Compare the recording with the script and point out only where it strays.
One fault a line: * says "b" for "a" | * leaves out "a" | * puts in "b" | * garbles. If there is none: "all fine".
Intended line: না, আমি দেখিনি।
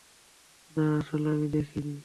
* puts in "আসলে"